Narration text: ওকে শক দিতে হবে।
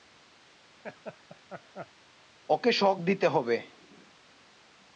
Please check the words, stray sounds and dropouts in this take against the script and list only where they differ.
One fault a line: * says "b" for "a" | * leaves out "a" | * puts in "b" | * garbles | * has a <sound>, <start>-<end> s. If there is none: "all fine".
* has a laugh, 0.8-1.9 s